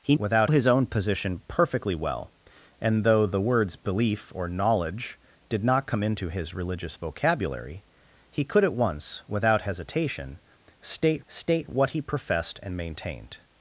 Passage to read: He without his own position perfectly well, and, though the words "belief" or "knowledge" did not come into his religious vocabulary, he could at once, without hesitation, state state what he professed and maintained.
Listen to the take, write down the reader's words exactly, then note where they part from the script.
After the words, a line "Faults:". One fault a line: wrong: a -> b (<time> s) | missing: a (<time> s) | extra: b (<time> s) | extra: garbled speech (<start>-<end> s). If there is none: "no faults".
He without his own position perfectly well, and, though the words "belief" or "knowledge" did not come into his religious vocabulary, he could at once, without hesitation, state state what he professed and maintained.
Faults:
no faults